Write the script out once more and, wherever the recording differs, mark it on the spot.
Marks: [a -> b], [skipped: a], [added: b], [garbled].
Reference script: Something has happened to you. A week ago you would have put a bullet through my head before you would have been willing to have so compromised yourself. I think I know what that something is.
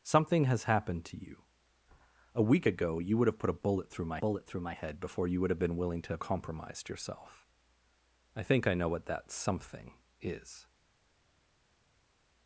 Something has happened to you. A week ago you would have put a bullet through my [added: bullet through my] head before you would have been willing to have [skipped: so] compromised yourself. I think I know what that something is.